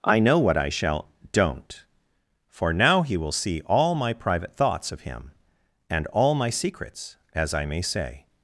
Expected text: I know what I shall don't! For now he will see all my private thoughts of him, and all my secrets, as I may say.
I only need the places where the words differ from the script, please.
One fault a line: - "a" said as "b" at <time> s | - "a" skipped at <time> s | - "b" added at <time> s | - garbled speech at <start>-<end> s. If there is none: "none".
none